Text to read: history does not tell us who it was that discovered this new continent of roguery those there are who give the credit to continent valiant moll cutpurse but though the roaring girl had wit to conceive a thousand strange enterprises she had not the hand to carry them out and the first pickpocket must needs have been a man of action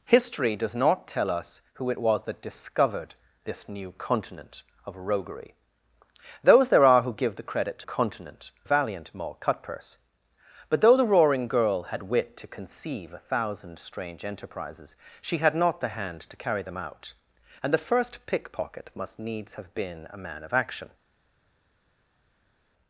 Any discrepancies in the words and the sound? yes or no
no